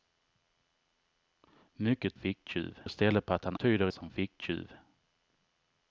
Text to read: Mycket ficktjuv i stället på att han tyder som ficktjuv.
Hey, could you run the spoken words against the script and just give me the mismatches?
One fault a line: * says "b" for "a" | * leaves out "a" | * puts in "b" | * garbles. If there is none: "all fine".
all fine